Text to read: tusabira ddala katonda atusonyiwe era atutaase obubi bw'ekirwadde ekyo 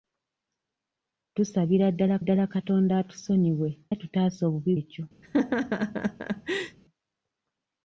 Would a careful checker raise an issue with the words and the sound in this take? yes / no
yes